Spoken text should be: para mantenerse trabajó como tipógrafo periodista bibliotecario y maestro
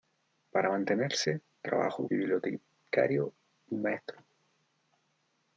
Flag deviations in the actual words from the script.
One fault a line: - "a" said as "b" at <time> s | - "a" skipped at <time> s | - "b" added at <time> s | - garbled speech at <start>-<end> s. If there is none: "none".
- "como tipógrafo periodista" skipped at 2.1 s